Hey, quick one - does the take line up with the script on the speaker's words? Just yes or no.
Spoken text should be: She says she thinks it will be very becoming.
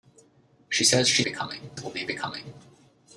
no